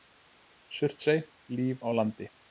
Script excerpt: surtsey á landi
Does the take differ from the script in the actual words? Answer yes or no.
yes